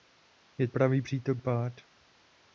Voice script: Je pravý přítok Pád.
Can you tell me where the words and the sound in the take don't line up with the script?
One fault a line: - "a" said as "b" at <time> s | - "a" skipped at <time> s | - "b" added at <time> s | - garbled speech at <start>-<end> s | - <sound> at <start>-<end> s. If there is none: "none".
none